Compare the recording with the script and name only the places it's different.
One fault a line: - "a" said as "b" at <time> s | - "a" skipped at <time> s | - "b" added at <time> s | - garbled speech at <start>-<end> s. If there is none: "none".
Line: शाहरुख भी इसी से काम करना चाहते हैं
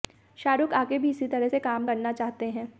- "आगे" added at 0.7 s
- "तरह" added at 1.3 s